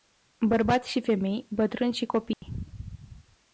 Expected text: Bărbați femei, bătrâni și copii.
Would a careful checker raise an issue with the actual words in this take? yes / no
yes